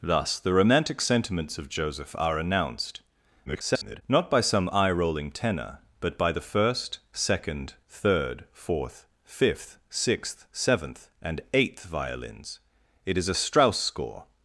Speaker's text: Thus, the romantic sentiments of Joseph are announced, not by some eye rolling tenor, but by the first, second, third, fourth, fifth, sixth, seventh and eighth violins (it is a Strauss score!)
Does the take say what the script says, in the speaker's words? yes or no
no